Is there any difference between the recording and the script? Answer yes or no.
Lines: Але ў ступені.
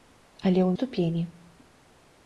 no